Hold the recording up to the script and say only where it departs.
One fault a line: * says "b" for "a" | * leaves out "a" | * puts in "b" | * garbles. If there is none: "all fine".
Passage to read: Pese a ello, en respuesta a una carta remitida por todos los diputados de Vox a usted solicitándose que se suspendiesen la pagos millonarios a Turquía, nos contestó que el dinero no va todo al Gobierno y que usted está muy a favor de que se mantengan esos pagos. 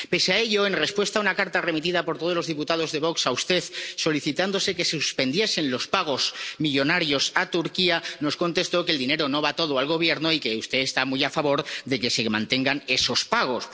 * says "los" for "la"